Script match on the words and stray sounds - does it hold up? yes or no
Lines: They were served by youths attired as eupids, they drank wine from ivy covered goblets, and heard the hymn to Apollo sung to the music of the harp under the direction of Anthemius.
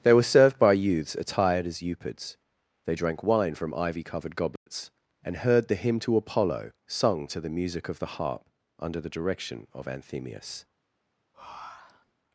no